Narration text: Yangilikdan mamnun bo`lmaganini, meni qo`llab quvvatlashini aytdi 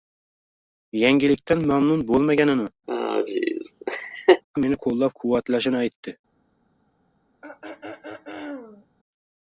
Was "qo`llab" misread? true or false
false